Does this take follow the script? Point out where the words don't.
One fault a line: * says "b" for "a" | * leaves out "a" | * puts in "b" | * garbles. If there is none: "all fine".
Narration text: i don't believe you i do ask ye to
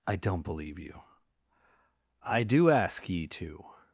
all fine